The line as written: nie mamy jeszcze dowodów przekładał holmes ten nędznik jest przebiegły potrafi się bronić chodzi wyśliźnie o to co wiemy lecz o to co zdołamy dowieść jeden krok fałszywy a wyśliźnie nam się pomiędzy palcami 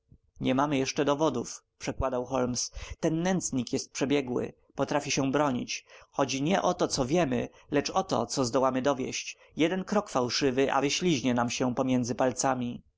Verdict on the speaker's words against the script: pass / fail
fail